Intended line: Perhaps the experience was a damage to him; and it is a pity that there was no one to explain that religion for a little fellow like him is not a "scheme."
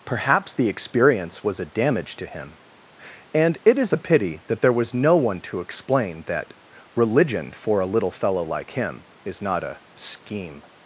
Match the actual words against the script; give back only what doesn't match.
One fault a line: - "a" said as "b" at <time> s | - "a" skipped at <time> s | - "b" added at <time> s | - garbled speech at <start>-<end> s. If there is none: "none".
none